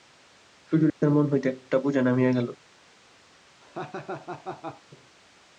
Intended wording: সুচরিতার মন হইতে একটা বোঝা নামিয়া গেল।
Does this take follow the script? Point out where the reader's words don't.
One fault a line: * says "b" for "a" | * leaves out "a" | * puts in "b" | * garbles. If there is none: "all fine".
all fine